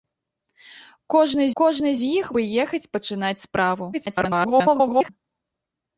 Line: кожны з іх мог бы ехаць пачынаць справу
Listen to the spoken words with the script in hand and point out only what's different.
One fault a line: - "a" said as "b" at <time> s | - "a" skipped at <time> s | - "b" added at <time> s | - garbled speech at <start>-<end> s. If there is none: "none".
- "кожны" added at 1.6 s
- "мог" skipped at 2.3 s
- garbled speech at 3.9-5.1 s